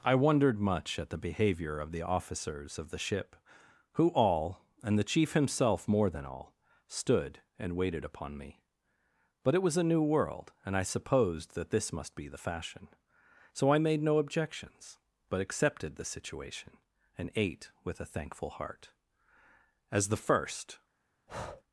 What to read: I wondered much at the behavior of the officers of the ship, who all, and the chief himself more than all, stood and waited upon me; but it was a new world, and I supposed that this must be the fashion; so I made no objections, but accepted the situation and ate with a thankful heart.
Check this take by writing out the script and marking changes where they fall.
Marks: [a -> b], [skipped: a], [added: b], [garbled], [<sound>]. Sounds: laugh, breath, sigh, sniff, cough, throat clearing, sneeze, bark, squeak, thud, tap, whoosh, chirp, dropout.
I wondered much at the behavior of the officers of the ship, who all, and the chief himself more than all, stood and waited upon me; but it was a new world, and I supposed that this must be the fashion; so I made no objections, but accepted the situation and ate with a thankful heart. [added: As the first] [breath]